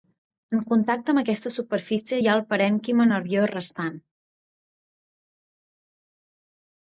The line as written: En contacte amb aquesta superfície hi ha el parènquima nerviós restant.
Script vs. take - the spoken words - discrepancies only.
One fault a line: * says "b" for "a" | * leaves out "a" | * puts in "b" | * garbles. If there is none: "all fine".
all fine